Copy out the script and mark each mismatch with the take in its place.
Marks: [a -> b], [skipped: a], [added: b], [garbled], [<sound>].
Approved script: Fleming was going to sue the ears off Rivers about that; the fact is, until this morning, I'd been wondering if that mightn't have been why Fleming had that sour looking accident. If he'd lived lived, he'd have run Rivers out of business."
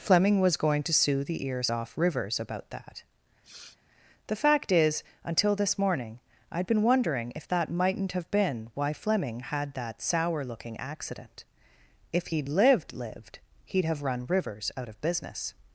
Fleming was going to sue the ears off Rivers about that; [sniff] the fact is, until this morning, I'd been wondering if that mightn't have been why Fleming had that sour looking accident. If he'd lived lived, he'd have run Rivers out of business."